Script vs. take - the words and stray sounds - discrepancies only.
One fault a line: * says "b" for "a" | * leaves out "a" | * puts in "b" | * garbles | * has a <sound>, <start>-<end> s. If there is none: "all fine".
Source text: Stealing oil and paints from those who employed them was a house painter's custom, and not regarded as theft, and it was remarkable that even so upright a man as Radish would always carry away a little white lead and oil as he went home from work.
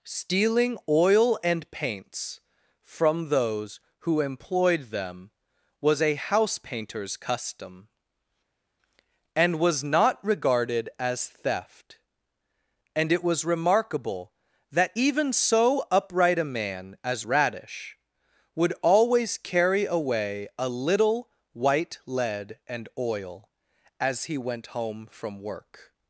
* puts in "was"